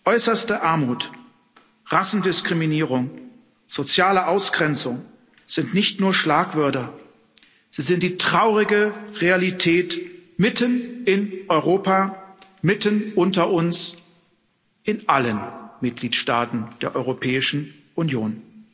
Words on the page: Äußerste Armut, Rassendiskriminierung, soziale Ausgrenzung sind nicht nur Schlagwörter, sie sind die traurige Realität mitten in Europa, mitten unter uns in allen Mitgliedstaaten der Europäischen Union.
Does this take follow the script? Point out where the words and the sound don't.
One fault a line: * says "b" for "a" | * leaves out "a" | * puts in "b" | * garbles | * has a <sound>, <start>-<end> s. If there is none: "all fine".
all fine